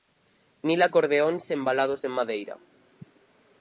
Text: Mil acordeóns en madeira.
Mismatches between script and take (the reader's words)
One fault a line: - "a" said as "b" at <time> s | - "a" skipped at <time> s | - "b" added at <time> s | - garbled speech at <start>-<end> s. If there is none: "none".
- "embalados" added at 1.6 s